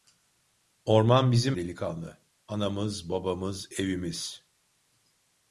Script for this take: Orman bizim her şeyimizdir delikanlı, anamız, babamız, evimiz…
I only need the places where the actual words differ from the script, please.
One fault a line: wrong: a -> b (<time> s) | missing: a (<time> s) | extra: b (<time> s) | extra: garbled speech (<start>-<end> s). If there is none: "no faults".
missing: her şeyimizdir (1.6 s)